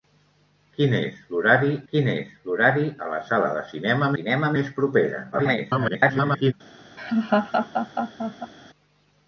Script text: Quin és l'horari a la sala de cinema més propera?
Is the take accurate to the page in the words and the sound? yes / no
no